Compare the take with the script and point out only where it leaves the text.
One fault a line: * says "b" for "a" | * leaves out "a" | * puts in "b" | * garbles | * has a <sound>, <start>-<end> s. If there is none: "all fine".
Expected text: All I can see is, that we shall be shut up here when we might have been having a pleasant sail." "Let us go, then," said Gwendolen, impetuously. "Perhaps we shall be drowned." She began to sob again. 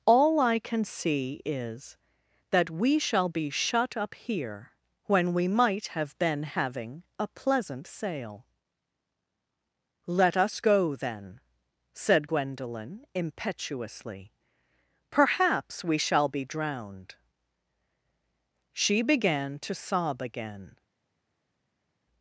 all fine